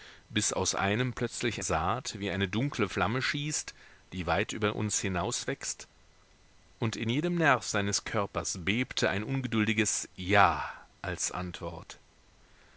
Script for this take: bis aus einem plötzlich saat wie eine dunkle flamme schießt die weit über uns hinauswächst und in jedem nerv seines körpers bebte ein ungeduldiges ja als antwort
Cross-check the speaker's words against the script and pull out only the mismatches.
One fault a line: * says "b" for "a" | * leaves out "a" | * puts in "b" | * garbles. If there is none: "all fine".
all fine